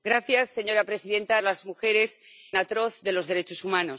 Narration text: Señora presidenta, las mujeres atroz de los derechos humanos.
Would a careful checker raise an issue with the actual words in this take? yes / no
no